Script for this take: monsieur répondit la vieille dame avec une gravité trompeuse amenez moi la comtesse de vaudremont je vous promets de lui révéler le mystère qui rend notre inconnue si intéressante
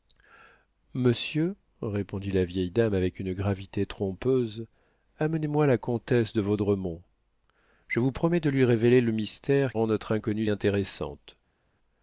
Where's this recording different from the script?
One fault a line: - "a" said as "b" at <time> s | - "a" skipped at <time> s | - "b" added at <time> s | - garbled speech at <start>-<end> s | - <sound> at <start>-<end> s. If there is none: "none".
- "qui" skipped at 9.8 s
- "si" skipped at 10.5 s